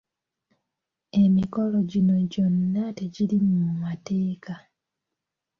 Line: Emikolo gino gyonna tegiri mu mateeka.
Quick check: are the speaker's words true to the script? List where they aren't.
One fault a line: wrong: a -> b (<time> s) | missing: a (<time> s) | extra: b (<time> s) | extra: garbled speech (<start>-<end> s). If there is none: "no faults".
no faults